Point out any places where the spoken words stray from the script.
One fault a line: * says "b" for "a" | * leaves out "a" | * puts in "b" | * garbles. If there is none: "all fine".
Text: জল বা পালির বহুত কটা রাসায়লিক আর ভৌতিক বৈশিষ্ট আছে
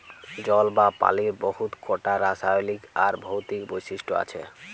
all fine